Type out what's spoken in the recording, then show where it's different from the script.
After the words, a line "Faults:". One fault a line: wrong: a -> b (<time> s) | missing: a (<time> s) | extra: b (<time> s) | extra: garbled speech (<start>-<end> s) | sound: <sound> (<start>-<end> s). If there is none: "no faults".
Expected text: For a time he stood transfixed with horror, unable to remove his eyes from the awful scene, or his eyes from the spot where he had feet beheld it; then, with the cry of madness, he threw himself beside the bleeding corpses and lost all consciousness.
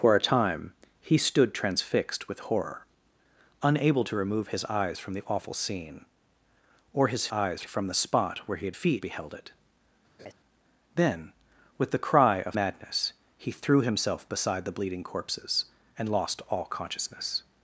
For a time he stood transfixed with horror, unable to remove his eyes from the awful scene, or his eyes from the spot where he had feet beheld it; then, with the cry of madness, he threw himself beside the bleeding corpses and lost all consciousness.
Faults:
sound: laugh (10.2-10.3 s)